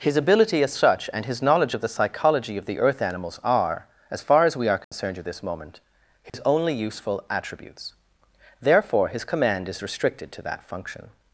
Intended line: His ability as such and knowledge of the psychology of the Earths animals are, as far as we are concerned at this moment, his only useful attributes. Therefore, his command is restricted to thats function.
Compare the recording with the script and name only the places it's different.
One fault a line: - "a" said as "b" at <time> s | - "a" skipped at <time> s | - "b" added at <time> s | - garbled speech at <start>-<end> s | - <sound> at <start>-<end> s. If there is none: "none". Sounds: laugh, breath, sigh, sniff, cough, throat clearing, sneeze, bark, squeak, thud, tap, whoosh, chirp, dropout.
- "his" added at 1.3 s
- "Earths" said as "Earth" at 2.8 s
- dropout at 4.8-4.9 s
- dropout at 6.3-6.3 s
- "thats" said as "that" at 10.4 s